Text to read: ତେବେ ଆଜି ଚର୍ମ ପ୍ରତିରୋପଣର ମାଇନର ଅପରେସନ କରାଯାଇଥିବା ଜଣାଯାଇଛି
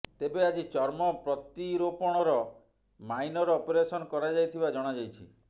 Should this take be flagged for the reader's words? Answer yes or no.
no